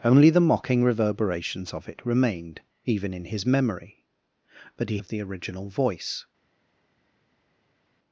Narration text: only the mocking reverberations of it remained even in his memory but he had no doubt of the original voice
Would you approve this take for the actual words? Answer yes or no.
no